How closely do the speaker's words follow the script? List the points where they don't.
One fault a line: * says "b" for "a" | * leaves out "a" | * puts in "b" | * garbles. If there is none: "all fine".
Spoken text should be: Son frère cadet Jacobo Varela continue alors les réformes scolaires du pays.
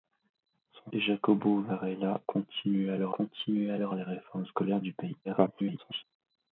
* says "Jacobo Varela continue alors" for "frère cadet Jacobo Varela"
* garbles